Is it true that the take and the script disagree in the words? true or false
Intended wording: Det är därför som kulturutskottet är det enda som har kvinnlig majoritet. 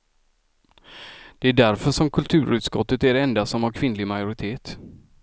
false